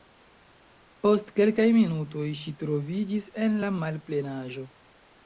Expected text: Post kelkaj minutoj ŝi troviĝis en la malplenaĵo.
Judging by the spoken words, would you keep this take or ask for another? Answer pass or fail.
pass